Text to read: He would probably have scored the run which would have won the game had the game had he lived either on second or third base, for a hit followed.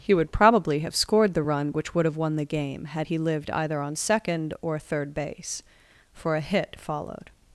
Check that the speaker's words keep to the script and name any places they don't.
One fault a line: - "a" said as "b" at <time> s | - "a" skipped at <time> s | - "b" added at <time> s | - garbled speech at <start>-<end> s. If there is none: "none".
- "the game had" skipped at 3.1 s